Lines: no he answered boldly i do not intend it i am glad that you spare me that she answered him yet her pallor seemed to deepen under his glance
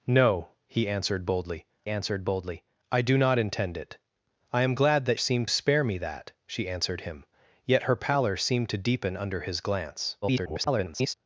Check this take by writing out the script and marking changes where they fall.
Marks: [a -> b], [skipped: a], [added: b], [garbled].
no he answered boldly [added: answered boldly] i do not intend it i am glad that [you -> seemed] spare me that she answered him yet her pallor seemed to deepen under his glance [garbled]